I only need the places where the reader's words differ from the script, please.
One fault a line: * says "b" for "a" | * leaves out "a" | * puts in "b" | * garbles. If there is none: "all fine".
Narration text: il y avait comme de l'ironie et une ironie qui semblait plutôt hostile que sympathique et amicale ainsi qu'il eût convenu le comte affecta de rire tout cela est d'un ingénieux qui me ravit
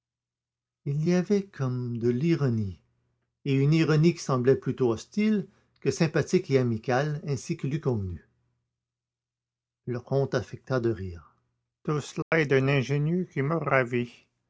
all fine